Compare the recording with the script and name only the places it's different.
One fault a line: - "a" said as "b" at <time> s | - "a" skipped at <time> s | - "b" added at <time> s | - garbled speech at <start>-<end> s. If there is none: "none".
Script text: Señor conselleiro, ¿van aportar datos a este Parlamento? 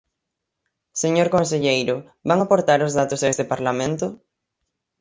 - "os" added at 2.9 s